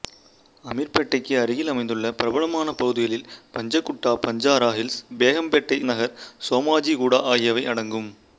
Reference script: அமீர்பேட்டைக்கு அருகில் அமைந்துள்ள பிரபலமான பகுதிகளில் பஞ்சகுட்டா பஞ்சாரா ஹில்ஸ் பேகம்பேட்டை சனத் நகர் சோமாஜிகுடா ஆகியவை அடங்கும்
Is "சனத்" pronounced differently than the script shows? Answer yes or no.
yes